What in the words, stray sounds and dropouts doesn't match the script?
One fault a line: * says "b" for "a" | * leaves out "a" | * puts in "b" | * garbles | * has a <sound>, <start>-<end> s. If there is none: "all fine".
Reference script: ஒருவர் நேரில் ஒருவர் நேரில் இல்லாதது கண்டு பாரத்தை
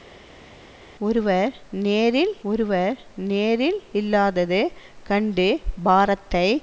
all fine